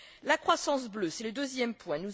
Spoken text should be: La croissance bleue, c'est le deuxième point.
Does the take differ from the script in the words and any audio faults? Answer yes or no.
no